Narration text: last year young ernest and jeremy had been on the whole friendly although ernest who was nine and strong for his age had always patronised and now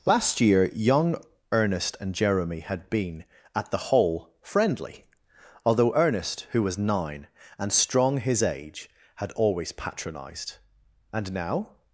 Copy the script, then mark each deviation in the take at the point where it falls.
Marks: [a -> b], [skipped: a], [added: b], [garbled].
last year young ernest and jeremy had been [on -> at] the whole friendly although ernest who was nine and strong [skipped: for] his age had always patronised and now